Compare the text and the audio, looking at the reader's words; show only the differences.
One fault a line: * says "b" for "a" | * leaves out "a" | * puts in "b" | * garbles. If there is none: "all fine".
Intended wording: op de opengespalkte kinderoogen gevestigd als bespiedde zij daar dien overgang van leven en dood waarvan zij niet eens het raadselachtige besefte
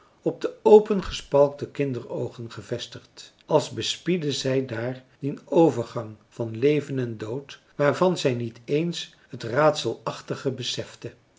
all fine